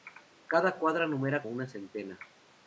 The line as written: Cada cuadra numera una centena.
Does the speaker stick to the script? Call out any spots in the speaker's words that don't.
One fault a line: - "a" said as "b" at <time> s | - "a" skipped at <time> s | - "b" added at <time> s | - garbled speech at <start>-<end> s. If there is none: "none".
none